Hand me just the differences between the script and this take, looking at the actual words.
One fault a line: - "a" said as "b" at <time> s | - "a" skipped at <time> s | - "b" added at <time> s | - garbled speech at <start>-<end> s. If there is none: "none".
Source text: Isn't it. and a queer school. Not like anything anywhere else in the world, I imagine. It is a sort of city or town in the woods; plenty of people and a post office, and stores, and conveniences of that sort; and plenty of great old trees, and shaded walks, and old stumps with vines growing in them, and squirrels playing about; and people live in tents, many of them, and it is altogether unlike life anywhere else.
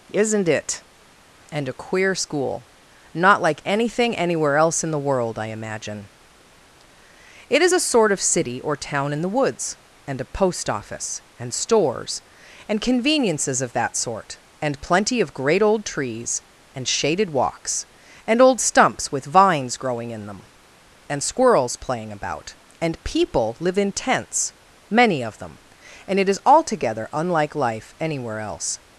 - "plenty of people" skipped at 9.8 s